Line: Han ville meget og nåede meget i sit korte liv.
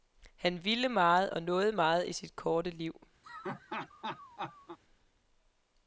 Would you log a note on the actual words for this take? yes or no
no